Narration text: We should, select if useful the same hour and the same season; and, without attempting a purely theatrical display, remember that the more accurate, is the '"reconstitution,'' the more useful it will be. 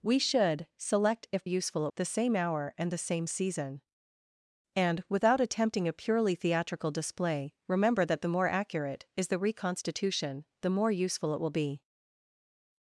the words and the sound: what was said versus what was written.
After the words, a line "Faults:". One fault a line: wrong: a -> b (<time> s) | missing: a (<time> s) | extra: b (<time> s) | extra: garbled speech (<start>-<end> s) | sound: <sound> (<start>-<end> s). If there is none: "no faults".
We should, select if useful the same hour and the same season; and, without attempting a purely theatrical display, remember that the more accurate, is the '"reconstitution,'' the more useful it will be.
Faults:
no faults